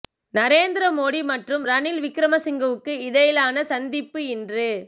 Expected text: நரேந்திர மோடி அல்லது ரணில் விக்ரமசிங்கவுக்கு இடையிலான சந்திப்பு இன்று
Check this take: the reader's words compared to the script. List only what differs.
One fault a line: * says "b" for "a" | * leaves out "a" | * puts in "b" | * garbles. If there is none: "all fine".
* says "மற்றும்" for "அல்லது"